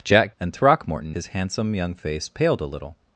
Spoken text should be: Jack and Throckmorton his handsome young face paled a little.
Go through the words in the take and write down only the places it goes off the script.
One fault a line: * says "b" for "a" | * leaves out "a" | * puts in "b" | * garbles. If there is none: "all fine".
all fine